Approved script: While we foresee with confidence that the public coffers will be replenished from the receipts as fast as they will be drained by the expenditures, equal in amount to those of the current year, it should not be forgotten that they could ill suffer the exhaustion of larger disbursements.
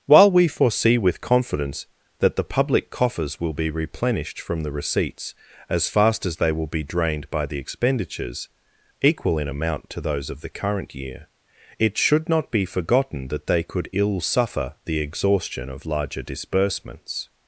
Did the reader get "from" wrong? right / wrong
right